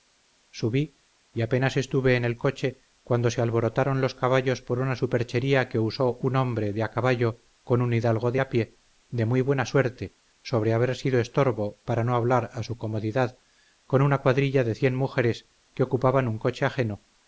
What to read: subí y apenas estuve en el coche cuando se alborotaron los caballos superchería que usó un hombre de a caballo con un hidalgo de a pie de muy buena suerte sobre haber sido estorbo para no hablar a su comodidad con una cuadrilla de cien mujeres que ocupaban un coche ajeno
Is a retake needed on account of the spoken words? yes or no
yes